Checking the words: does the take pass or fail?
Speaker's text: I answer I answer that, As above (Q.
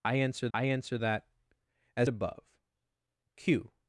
pass